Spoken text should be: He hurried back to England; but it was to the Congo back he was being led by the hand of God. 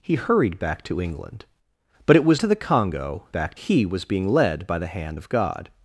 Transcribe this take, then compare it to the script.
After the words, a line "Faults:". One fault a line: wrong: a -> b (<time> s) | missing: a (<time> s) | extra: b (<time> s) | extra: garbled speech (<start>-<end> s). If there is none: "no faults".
He hurried back to England; but it was to the Congo back he was being led by the hand of God.
Faults:
no faults